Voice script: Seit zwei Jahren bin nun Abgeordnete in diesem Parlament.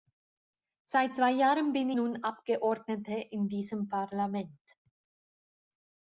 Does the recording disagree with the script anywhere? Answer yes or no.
no